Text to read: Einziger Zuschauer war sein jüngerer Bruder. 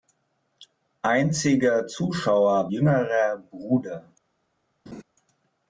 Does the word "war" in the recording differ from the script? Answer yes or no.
yes